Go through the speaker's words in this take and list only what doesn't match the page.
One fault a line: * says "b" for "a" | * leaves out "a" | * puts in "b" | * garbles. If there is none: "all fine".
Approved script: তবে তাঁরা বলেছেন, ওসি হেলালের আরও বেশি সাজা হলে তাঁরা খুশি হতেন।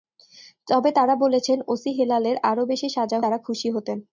* leaves out "হলে"